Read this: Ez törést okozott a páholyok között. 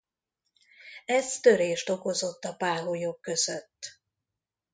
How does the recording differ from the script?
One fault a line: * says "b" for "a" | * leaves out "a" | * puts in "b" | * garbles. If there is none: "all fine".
all fine